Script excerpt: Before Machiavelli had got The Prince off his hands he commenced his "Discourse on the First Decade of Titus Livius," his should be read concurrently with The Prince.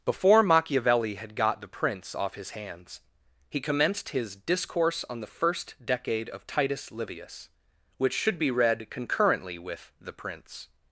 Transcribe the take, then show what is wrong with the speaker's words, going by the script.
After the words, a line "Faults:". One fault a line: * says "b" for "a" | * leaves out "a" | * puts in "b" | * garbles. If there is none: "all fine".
Before Machiavelli had got The Prince off his hands he commenced his "Discourse on the First Decade of Titus Livius," which should be read concurrently with The Prince.
Faults:
* says "which" for "his"